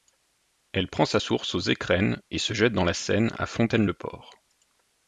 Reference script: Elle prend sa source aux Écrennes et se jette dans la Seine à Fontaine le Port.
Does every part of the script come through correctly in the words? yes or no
yes